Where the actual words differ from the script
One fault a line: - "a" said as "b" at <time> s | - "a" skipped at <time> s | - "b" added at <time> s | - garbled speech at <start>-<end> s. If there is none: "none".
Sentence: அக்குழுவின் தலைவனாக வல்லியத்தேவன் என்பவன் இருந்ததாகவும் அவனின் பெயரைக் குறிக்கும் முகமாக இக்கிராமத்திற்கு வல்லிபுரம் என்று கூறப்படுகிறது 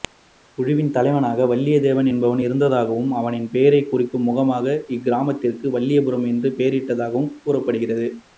- "பெயரிடப்பட்டதாகவும்" added at 6.6 s